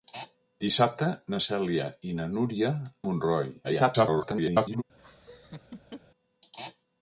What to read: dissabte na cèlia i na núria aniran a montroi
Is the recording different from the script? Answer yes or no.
yes